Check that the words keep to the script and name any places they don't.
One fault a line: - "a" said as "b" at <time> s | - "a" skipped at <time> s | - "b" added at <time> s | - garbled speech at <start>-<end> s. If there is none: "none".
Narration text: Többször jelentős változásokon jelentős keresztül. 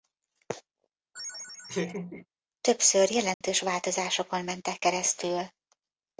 - "jelentős" said as "mentek" at 4.4 s